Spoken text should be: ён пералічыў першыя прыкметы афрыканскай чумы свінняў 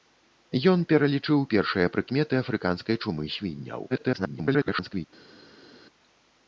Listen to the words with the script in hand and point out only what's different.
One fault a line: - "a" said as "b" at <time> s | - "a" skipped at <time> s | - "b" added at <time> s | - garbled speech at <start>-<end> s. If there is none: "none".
- garbled speech at 3.9-5.1 s